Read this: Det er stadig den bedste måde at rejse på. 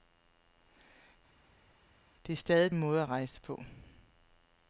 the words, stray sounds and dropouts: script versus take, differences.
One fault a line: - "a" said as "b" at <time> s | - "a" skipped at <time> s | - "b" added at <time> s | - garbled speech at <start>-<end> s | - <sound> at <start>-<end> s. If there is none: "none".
- "den bedste" skipped at 2.7 s